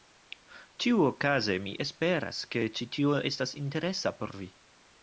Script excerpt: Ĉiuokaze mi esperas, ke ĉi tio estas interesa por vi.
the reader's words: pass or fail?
pass